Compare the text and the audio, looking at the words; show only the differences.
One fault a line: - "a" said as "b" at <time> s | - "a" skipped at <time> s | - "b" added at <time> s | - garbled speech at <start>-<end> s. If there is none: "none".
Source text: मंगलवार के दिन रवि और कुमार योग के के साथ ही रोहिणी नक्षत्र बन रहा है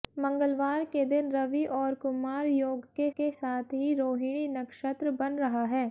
none